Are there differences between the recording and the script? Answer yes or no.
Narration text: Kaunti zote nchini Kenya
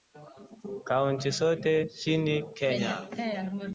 no